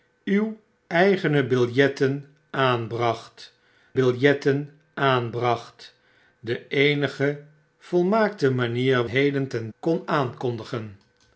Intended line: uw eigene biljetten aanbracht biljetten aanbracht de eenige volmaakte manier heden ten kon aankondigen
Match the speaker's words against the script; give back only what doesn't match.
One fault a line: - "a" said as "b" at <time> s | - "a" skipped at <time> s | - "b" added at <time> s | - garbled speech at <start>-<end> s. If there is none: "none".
none